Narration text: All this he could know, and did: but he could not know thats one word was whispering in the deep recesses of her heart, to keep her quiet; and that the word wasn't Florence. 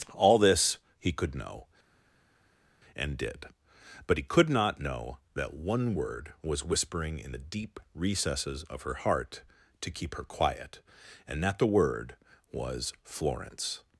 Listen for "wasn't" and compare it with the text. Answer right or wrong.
wrong